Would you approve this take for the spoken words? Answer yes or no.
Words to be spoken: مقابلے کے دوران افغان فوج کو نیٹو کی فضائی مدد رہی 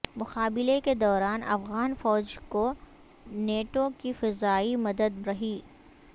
yes